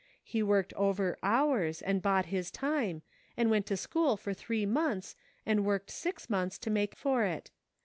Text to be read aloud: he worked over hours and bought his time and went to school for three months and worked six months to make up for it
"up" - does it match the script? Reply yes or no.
no